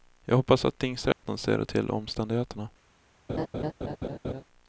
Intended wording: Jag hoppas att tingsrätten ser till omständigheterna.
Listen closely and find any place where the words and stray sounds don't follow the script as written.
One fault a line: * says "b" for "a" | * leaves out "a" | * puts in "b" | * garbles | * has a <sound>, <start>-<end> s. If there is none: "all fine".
* has a dropout, 1.1-1.2 s
* has a laugh, 3.3-4.4 s